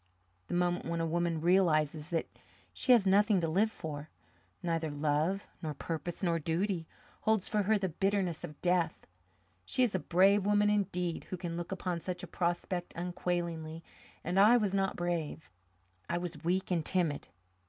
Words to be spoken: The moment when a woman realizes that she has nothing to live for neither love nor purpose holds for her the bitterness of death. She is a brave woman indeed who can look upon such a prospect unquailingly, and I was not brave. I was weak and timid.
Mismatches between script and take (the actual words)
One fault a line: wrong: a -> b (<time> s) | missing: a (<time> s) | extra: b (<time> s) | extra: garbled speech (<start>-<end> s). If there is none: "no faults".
extra: nor duty (6.2 s)